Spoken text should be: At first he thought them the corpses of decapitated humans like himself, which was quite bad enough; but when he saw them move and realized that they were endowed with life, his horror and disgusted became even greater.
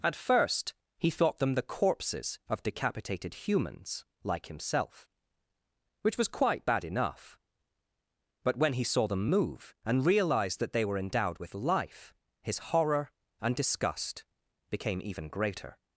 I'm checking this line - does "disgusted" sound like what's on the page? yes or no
no